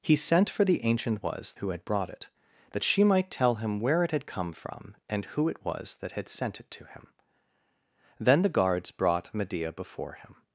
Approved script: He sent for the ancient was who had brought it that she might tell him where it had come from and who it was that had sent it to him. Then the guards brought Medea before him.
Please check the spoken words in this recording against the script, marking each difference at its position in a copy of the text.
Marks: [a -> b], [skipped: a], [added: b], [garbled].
He sent for the ancient was who had brought it that she might tell him where it had come from and who it was that had sent it to him. Then the guards brought Medea before him.